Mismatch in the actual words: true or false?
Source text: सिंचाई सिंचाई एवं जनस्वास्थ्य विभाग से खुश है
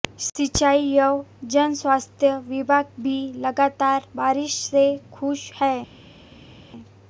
true